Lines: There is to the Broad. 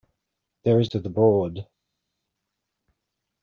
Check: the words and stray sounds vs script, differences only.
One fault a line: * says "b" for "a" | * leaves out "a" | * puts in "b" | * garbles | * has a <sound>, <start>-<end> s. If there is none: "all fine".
all fine